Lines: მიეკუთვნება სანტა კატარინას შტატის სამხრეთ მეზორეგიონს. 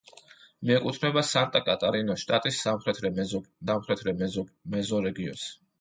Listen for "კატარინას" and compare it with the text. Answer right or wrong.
right